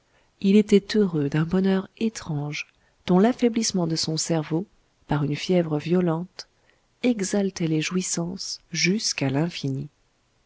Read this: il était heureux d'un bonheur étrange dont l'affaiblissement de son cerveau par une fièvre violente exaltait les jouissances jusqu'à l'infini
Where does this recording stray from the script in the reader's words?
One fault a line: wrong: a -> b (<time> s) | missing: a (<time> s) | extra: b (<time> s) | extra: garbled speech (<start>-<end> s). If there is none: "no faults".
no faults